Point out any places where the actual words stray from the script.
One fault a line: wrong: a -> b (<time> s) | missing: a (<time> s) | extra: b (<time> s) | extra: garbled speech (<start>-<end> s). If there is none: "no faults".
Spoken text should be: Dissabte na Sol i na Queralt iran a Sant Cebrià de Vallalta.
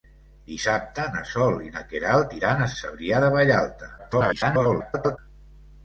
missing: Sant (2.7 s)
extra: garbled speech (4.0-5.2 s)